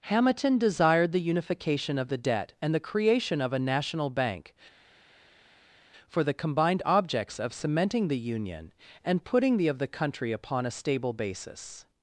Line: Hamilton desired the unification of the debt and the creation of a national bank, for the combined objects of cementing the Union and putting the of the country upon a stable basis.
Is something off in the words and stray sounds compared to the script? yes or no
no